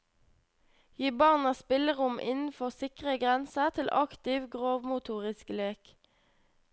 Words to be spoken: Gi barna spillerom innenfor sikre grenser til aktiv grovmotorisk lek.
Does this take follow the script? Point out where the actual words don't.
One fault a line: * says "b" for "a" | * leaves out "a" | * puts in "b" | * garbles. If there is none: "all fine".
all fine